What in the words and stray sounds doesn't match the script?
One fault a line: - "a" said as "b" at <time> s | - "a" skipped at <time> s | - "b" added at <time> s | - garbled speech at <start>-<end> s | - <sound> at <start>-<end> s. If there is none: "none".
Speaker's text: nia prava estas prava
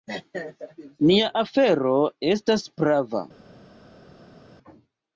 - "prava" said as "afero" at 1.4 s